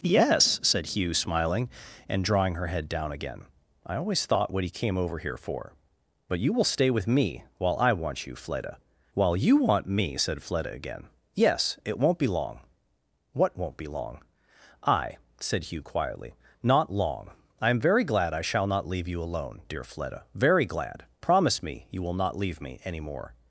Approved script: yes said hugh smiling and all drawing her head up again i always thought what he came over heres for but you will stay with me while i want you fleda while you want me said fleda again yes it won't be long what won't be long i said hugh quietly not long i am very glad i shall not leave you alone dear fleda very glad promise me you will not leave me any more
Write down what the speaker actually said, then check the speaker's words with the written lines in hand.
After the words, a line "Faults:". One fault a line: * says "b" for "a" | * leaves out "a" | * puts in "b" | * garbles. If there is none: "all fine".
yes said hugh smiling and drawing her head down again i always thought what he came over here for but you will stay with me while i want you fleda while you want me said fleda again yes it won't be long what won't be long i said hugh quietly not long i am very glad i shall not leave you alone dear fleda very glad promise me you will not leave me any more
Faults:
* leaves out "all"
* says "down" for "up"
* says "here" for "heres"